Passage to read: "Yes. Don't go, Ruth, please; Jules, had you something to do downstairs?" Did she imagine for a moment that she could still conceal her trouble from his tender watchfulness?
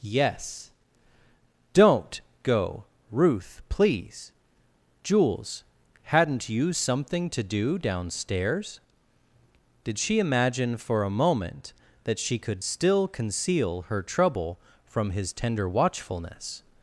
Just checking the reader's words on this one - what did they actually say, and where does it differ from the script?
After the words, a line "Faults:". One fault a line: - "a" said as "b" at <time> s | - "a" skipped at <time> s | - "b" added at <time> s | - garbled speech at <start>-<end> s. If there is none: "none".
"Yes. Don't go, Ruth, please; Jules, hadn't you something to do downstairs?" Did she imagine for a moment that she could still conceal her trouble from his tender watchfulness?
Faults:
- "had" said as "hadn't" at 6.0 s